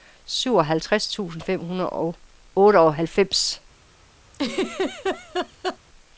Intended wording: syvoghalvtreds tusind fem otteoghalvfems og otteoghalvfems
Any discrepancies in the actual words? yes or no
yes